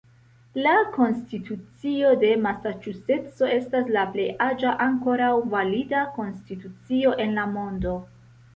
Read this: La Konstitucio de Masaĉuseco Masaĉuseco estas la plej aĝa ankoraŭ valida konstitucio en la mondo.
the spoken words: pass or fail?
fail